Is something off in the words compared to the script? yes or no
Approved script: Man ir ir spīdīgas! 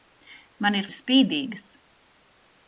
no